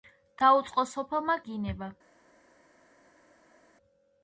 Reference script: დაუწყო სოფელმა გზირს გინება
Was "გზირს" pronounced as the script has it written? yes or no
no